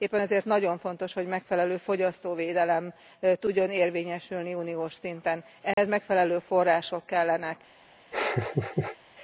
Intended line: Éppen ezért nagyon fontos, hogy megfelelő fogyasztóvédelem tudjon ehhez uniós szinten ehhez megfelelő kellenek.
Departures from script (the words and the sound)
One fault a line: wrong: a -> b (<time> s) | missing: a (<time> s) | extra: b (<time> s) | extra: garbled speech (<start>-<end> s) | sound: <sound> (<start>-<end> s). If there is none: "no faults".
wrong: ehhez -> érvényesülni (3.7 s)
sound: dropout (5.7-5.8 s)
extra: források (6.4 s)
sound: laugh (8.1-9.0 s)